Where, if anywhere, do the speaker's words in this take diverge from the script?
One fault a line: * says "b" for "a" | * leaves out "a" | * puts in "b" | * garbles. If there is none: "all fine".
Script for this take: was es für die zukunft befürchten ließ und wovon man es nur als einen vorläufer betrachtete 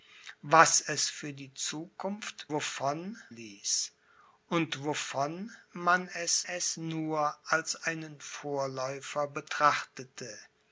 * says "wovon" for "befürchten"
* puts in "es"